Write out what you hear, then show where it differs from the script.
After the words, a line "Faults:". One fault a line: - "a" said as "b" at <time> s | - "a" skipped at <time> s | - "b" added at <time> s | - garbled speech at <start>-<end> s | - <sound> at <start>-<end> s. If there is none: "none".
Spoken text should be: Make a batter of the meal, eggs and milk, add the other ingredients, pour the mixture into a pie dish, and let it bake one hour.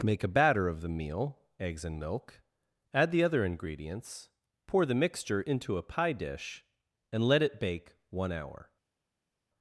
Make a batter of the meal, eggs and milk, add the other ingredients, pour the mixture into a pie dish, and let it bake one hour.
Faults:
none